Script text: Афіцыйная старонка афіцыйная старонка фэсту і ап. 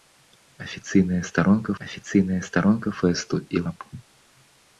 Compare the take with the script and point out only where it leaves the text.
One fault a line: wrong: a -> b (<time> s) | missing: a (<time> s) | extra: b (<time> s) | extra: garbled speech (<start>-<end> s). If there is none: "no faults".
no faults